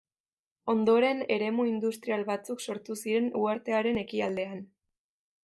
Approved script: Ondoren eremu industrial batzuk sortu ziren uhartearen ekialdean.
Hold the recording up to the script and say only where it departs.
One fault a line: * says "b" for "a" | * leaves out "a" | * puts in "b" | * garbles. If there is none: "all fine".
all fine